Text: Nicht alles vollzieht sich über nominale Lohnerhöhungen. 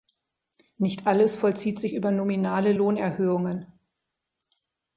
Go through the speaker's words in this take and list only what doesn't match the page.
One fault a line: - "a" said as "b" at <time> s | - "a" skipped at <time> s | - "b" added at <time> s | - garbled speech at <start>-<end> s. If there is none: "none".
none